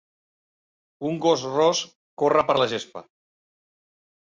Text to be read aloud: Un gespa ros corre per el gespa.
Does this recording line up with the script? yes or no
no